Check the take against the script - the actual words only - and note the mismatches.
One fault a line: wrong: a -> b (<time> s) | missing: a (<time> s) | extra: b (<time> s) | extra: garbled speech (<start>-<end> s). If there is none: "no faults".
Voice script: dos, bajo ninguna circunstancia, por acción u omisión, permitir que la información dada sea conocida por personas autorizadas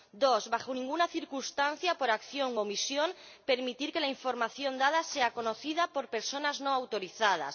extra: no (6.6 s)